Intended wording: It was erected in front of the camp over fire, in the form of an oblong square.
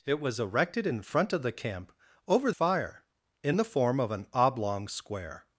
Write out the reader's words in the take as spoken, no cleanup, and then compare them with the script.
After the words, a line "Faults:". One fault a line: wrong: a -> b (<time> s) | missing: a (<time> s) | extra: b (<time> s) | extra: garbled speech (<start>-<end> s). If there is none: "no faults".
It was erected in front of the camp over fire, in the form of an oblong square.
Faults:
no faults